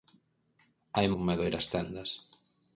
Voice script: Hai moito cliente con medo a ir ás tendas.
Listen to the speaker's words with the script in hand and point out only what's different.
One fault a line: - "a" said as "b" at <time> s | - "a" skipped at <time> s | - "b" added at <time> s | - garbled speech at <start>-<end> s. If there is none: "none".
- "moito cliente" skipped at 1.1 s